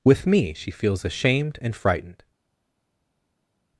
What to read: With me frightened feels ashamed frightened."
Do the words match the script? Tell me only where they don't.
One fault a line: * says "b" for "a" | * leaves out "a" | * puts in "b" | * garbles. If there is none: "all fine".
* says "she" for "frightened"
* puts in "and"